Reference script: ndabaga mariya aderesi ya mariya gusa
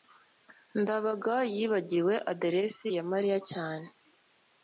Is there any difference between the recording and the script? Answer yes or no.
yes